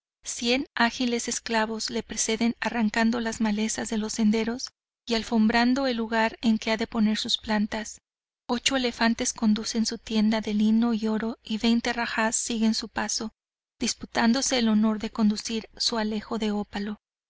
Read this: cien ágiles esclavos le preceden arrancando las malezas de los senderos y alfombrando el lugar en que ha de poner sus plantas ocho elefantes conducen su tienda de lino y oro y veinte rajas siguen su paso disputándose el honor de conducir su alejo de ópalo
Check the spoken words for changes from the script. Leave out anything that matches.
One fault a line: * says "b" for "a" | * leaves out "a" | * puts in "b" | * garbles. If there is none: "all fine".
all fine